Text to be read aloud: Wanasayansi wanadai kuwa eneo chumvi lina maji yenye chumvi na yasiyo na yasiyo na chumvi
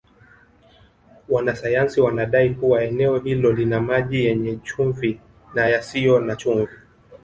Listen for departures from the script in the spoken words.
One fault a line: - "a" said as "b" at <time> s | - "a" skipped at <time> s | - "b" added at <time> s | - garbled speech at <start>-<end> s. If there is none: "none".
- "chumvi" said as "hilo" at 3.2 s
- "yasiyo na" skipped at 6.4 s